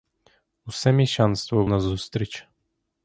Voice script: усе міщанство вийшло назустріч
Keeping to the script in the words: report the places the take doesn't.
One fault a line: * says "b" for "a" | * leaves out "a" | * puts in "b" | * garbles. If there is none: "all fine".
* leaves out "вийшло"